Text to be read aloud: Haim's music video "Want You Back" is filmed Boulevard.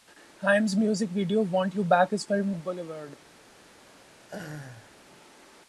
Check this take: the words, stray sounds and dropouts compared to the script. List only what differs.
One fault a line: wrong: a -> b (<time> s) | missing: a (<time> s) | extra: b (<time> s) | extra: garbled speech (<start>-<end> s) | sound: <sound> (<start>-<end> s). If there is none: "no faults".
sound: laugh (4.2-4.9 s)